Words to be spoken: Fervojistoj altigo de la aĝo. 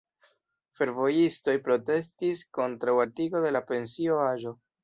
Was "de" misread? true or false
false